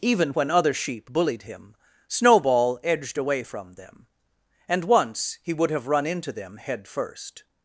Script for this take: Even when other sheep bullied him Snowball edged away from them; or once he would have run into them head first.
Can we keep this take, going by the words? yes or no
no